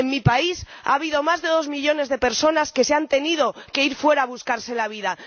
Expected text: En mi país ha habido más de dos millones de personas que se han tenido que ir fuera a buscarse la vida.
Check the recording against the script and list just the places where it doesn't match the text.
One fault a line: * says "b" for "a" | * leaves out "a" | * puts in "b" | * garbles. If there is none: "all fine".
all fine